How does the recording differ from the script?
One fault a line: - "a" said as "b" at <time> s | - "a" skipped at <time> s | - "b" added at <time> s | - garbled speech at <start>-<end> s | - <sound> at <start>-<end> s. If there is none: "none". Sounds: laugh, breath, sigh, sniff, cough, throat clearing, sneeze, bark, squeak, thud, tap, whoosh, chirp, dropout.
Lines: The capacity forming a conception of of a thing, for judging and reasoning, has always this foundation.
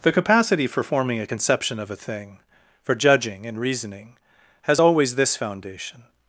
- "for" added at 0.7 s
- "of" skipped at 1.9 s